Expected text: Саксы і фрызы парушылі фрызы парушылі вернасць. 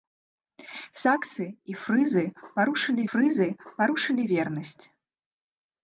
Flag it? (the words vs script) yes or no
no